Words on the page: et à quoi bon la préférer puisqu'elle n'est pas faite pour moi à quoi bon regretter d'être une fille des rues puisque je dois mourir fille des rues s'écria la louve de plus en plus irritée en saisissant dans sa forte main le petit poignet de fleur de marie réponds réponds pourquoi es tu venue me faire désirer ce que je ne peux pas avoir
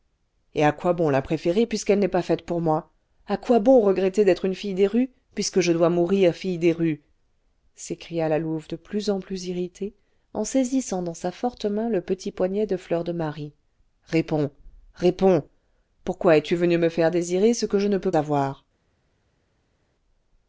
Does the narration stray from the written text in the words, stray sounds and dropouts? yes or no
yes